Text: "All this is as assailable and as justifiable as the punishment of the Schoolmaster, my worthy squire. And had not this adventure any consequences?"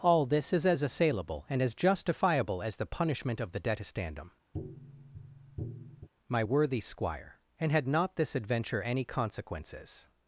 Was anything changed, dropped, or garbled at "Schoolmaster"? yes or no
yes